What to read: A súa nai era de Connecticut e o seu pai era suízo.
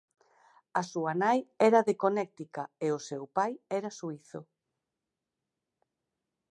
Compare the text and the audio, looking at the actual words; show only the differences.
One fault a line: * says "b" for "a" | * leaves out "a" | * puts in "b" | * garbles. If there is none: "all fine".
all fine